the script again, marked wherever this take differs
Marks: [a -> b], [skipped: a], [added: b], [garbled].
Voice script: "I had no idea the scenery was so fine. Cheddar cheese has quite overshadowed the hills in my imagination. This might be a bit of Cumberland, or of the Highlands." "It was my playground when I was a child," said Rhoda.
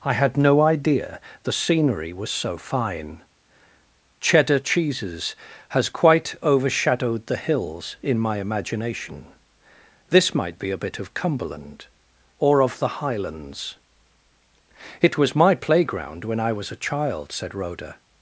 "I had no idea the scenery was so fine. Cheddar [cheese -> cheeses] has quite overshadowed the hills in my imagination. This might be a bit of Cumberland, or of the Highlands." "It was my playground when I was a child," said Rhoda.